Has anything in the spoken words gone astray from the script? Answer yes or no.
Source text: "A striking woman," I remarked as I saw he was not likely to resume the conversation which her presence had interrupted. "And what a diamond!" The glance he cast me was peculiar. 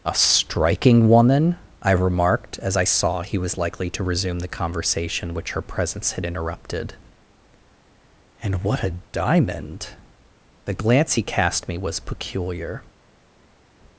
yes